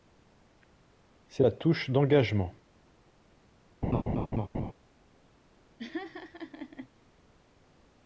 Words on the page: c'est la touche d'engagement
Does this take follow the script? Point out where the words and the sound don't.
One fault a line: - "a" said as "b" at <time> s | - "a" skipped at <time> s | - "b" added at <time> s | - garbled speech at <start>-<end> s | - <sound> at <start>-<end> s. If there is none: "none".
- laugh at 3.8-4.7 s
- laugh at 5.8-6.9 s